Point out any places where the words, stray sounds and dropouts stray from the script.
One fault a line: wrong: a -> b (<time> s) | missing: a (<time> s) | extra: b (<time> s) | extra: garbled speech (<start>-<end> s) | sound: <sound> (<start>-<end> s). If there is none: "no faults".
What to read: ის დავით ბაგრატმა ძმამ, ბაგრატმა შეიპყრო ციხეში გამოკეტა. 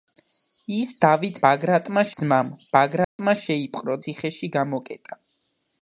sound: dropout (3.0-3.2 s)